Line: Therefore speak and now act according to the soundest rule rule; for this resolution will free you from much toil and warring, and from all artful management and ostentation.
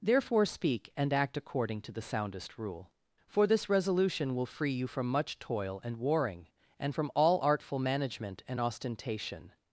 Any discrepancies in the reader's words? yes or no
yes